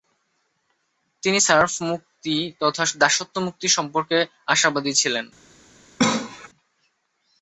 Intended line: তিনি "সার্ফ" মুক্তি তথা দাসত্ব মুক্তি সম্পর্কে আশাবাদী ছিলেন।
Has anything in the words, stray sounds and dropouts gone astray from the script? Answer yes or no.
yes